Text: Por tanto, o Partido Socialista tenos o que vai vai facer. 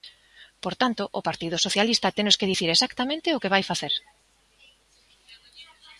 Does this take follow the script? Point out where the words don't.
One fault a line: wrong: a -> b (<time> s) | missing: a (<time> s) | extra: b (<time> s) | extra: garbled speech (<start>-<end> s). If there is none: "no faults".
extra: que dicir exactamente (2.4 s)
missing: vai (3.6 s)